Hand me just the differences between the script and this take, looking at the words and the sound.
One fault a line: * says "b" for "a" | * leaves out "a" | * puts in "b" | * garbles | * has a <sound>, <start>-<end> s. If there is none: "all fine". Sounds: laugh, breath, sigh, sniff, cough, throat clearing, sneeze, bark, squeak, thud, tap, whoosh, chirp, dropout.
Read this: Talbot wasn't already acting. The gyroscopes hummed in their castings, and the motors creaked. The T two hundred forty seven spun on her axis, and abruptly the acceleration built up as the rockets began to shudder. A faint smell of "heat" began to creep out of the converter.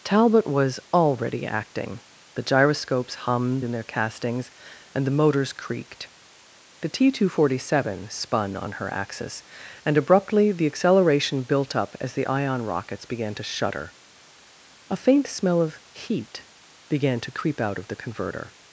* says "was" for "wasn't"
* puts in "ion"